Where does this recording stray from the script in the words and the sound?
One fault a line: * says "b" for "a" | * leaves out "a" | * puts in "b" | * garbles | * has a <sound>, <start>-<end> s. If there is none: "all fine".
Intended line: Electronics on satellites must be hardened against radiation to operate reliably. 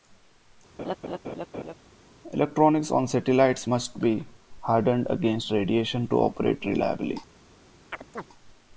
* has a laugh, 0.8-1.7 s
* has a chirp, 7.9-8.2 s